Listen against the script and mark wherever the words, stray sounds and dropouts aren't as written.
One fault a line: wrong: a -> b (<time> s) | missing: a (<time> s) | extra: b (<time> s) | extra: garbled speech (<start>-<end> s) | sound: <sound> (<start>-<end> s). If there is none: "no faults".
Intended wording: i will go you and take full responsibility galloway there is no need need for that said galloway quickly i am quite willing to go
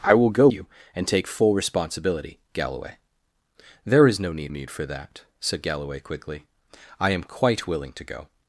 no faults